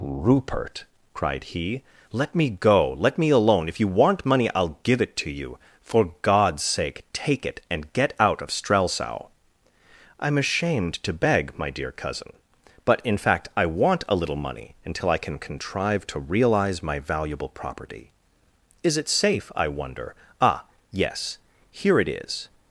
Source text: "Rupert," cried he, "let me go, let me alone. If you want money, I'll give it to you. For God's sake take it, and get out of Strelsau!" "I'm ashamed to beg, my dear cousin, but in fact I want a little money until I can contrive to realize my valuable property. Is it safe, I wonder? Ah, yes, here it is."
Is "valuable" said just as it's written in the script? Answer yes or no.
yes